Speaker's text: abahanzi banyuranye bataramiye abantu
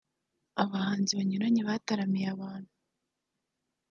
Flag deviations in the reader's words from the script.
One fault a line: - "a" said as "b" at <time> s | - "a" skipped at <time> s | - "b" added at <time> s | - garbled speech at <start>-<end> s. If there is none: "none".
none